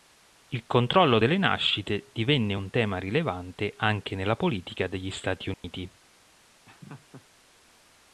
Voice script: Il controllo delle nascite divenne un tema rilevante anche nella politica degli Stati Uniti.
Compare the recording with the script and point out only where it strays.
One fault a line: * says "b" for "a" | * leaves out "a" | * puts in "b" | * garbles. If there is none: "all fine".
all fine